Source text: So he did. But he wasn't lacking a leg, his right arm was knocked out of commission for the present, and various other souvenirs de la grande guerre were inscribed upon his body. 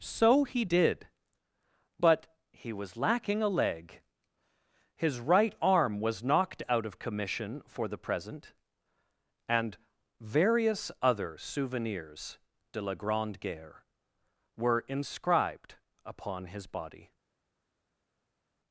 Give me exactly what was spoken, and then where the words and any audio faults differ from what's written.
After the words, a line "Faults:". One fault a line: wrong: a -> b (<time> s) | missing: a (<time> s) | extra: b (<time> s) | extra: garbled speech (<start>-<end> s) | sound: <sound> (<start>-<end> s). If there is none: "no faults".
So he did. But he was lacking a leg, his right arm was knocked out of commission for the present, and various other souvenirs de la grande guerre were inscribed upon his body.
Faults:
wrong: wasn't -> was (2.7 s)